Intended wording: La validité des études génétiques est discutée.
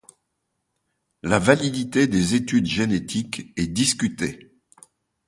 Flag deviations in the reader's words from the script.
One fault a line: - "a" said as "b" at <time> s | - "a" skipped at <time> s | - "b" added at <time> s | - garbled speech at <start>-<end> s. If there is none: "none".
none